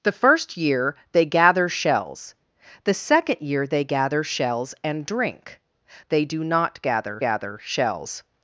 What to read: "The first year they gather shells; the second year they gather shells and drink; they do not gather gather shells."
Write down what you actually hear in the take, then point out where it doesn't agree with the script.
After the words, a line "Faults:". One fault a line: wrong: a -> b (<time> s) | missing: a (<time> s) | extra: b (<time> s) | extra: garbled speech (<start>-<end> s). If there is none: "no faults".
"The first year they gather shells; the second year they gather shells and drink; they do not gather gather shells."
Faults:
no faults